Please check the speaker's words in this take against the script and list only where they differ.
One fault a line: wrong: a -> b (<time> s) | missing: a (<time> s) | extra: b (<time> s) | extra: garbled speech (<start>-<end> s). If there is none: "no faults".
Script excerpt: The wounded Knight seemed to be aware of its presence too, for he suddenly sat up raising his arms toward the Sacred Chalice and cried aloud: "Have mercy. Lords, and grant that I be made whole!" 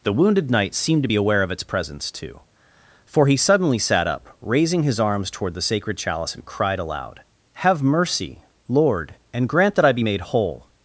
wrong: Lords -> Lord (8.7 s)